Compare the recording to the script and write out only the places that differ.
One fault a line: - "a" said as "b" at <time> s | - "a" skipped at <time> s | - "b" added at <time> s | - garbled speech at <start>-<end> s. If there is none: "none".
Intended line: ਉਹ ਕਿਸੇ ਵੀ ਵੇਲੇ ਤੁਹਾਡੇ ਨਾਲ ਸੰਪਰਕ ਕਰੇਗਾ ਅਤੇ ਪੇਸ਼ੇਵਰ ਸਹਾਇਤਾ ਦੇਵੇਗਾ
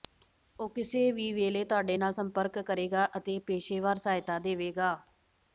none